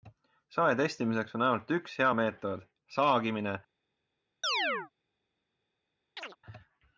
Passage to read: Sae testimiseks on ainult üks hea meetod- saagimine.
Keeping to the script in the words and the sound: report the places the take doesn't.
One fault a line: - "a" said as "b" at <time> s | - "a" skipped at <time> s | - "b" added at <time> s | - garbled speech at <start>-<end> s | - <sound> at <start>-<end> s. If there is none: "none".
- chirp at 4.4-4.9 s
- chirp at 6.2-6.4 s